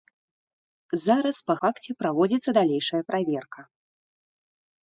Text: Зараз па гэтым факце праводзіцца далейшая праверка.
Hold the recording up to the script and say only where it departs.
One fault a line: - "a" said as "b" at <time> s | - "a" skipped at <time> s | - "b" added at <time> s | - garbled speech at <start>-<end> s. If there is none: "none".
- "гэтым" skipped at 1.6 s